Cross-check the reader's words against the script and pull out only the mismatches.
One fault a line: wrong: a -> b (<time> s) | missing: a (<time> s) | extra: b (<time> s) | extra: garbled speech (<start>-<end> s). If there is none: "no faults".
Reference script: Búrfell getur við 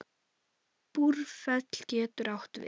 extra: átt (2.4 s)